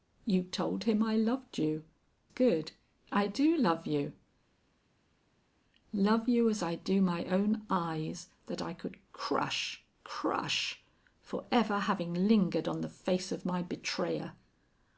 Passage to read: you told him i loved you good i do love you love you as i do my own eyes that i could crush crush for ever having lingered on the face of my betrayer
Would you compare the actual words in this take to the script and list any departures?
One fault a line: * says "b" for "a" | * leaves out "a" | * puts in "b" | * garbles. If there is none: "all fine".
all fine